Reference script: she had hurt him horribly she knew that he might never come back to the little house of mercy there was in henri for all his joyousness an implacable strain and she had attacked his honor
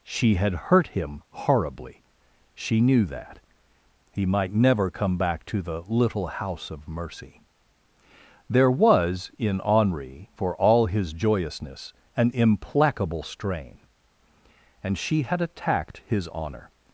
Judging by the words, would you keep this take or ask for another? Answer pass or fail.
pass